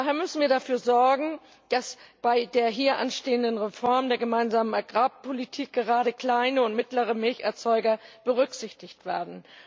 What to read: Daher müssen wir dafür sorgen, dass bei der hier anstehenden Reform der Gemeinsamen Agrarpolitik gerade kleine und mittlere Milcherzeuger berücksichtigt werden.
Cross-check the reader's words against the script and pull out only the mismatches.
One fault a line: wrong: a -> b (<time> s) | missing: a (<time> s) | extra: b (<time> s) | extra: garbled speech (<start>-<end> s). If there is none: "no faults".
no faults